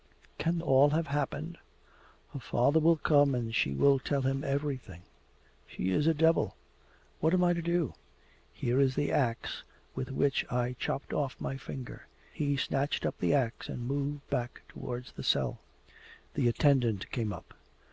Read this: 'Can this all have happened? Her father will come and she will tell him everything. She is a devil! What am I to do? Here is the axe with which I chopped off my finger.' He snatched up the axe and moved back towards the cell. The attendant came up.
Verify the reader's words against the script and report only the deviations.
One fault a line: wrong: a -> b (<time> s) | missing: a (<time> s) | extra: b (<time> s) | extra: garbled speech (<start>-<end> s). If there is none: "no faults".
missing: this (0.6 s)